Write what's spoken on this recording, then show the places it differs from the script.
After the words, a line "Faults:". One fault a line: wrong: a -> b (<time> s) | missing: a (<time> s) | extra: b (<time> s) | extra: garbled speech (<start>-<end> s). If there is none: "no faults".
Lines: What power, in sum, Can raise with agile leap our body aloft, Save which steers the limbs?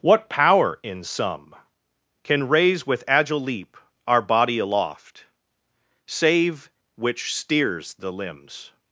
What power, in sum, Can raise with agile leap our body aloft, Save which steers the limbs?
Faults:
no faults